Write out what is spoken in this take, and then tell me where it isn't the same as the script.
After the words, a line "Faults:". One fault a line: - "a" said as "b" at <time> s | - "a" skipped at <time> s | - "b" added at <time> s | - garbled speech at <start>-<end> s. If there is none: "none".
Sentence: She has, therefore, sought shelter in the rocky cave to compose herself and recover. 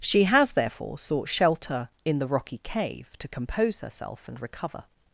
She has, therefore, sought shelter in the rocky cave to compose herself and recover.
Faults:
none